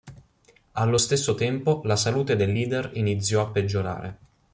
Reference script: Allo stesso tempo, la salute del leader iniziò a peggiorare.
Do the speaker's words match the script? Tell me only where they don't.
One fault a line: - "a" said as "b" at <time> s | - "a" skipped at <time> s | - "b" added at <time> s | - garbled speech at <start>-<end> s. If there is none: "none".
none